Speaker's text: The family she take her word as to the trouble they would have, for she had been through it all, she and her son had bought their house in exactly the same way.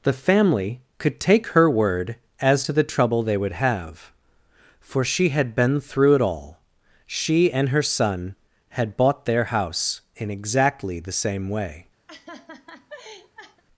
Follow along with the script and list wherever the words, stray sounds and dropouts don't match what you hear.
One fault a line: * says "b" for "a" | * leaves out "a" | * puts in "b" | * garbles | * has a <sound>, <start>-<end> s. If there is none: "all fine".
* says "could" for "she"
* has a laugh, 12.1-13.6 s